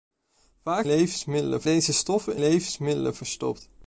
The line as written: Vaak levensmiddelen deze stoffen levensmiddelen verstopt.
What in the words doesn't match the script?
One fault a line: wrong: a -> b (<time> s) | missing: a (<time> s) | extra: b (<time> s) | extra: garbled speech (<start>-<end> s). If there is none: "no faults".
no faults